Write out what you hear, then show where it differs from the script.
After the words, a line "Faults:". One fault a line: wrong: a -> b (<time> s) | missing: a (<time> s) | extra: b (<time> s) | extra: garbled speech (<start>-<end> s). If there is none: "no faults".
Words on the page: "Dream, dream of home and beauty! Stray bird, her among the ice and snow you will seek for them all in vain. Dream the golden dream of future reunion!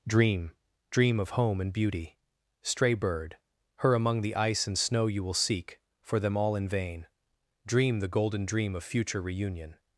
"Dream, dream of home and beauty! Stray bird, her among the ice and snow you will seek for them all in vain. Dream the golden dream of future reunion!
Faults:
no faults